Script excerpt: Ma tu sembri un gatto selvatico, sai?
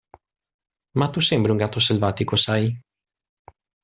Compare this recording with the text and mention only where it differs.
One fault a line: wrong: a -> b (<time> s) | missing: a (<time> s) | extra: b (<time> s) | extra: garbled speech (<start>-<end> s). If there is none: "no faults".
no faults